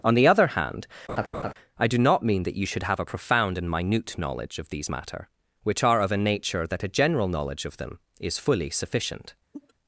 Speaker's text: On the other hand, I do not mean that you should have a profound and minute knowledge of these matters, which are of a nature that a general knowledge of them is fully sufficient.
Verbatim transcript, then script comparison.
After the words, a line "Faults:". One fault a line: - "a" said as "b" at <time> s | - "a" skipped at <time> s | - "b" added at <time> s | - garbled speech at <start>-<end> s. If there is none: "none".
On the other hand, I do not mean that you should have a profound and minute knowledge of these matter, which are of a nature that a general knowledge of them is fully sufficient.
Faults:
- "matters" said as "matter" at 4.9 s